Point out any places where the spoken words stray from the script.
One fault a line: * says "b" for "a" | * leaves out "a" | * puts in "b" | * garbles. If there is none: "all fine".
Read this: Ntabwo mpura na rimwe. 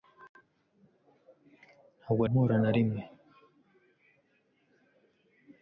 all fine